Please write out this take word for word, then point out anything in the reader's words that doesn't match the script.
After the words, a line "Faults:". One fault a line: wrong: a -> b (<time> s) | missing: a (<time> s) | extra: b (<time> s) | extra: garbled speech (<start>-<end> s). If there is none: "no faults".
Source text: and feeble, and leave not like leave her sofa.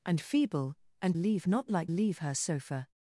and feeble, and leave not like leave her sofa.
Faults:
no faults